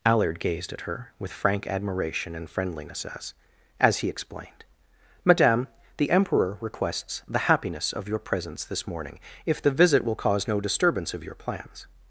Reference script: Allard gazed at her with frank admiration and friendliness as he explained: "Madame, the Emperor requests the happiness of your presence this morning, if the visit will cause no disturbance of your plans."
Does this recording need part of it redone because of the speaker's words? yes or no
yes